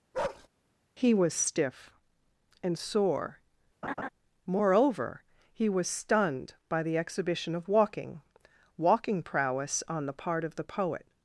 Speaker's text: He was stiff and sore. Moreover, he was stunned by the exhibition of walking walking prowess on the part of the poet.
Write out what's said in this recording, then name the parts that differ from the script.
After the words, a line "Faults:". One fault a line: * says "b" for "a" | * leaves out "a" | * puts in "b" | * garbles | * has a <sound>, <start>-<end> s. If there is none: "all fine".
He was stiff and sore. Moreover, he was stunned by the exhibition of walking walking prowess on the part of the poet.
Faults:
* has a bark, 0.1-0.5 s
* has a laugh, 3.8-4.1 s